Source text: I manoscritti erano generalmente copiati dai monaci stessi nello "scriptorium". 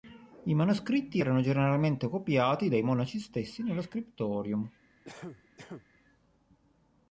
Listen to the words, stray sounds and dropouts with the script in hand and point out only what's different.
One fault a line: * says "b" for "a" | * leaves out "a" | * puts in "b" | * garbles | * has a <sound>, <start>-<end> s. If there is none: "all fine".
* has a cough, 5.0-5.9 s